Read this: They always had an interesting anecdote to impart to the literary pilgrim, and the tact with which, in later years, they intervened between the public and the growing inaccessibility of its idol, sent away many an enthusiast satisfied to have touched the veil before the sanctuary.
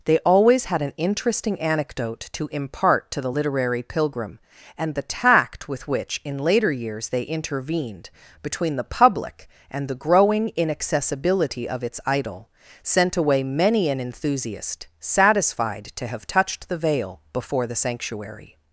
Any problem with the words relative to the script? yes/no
no